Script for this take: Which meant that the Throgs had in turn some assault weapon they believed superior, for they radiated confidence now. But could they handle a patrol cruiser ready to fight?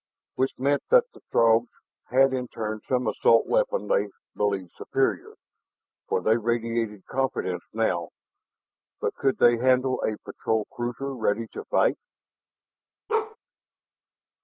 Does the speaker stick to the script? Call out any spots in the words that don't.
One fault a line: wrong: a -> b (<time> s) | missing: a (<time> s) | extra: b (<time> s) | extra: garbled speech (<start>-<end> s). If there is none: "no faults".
no faults